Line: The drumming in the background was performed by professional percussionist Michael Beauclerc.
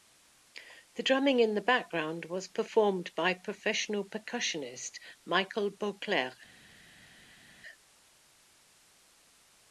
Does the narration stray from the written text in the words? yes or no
no